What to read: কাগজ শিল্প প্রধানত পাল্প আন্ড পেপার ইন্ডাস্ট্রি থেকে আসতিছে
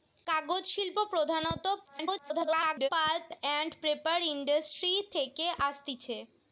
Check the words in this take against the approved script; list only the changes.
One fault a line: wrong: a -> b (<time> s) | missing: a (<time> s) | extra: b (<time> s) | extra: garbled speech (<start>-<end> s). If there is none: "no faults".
extra: garbled speech (1.8-2.9 s)